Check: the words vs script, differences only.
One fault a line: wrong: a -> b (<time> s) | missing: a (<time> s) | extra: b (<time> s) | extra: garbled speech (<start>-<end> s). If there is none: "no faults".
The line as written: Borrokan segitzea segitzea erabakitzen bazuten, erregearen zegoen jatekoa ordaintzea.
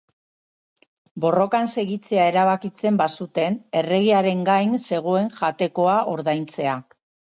missing: segitzea (2.2 s)
extra: gain (4.5 s)